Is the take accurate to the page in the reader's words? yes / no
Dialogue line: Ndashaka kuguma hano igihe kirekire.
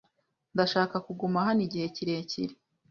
yes